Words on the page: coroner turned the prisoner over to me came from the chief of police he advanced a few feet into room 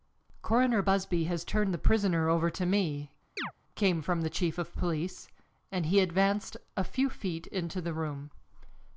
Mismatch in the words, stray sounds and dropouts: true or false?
true